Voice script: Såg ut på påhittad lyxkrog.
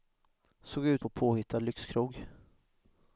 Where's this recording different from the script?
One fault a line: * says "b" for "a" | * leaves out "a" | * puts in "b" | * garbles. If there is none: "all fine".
all fine